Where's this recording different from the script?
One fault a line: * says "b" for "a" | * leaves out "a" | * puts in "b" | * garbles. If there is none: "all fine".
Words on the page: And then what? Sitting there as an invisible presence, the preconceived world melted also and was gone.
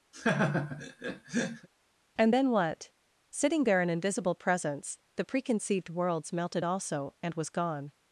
* leaves out "as"
* says "worlds" for "world"